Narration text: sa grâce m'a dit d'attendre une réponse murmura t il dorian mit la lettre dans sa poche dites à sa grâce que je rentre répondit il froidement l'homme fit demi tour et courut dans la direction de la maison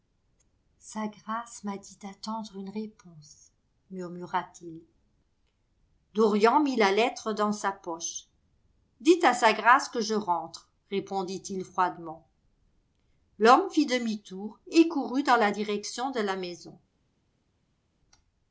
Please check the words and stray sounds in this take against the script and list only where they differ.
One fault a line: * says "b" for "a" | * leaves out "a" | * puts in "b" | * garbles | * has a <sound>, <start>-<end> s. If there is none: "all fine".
all fine